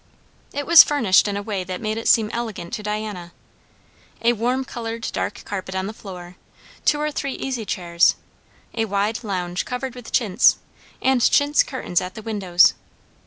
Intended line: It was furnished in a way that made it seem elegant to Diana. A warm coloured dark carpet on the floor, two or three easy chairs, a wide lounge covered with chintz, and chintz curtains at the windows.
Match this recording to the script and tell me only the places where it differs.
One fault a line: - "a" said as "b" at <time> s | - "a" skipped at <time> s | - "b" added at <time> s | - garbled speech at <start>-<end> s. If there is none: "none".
none